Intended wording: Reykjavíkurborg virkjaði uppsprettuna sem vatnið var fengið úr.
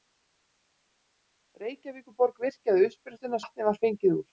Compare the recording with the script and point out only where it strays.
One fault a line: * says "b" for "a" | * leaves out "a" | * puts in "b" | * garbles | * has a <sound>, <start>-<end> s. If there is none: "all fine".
* leaves out "sem"